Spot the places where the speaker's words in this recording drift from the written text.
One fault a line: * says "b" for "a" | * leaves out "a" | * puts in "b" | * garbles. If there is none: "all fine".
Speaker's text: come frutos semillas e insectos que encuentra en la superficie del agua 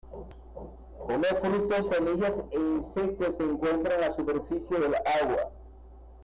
all fine